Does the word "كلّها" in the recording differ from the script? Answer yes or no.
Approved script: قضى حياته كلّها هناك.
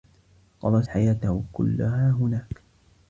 no